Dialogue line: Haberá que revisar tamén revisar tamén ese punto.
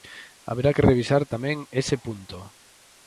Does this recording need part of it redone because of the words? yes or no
yes